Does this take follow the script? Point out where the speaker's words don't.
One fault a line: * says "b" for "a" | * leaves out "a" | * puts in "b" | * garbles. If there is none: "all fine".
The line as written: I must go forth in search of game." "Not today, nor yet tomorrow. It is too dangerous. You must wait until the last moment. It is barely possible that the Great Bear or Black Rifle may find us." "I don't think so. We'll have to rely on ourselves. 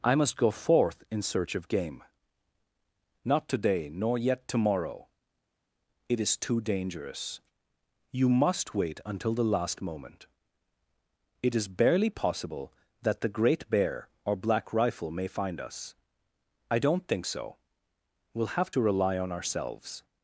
all fine